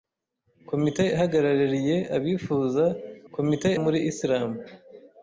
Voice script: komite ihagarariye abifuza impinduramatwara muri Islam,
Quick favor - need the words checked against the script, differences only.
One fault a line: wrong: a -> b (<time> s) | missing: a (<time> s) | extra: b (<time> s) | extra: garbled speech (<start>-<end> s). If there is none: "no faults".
wrong: impinduramatwara -> komite (3.3 s)